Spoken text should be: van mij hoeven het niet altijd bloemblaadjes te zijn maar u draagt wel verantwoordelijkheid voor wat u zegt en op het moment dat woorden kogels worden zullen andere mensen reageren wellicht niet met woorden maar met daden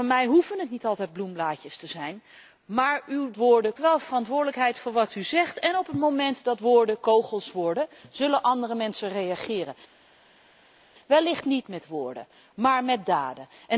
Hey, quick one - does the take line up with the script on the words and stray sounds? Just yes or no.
no